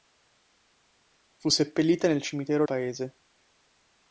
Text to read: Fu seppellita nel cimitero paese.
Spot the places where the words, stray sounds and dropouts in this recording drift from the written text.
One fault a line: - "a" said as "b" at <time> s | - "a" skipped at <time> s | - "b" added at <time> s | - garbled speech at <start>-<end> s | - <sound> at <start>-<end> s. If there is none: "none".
none